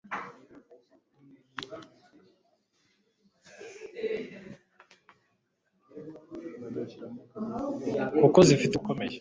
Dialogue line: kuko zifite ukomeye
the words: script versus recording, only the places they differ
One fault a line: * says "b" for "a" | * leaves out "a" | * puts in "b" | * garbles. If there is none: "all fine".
all fine